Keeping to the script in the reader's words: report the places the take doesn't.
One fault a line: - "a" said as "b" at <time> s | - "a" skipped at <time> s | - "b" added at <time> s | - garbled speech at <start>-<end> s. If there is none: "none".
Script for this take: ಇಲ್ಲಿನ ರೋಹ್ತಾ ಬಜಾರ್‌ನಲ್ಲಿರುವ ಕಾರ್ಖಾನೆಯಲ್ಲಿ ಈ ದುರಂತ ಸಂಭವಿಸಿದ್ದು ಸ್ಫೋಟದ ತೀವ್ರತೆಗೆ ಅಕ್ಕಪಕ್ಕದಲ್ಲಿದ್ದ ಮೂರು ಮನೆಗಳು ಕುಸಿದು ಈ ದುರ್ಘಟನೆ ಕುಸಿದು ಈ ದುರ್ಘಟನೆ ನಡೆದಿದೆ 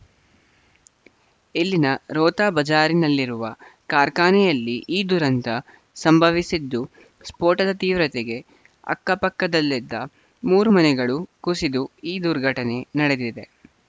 - "ಕುಸಿದು ಈ ದುರ್ಘಟನೆ" skipped at 12.8 s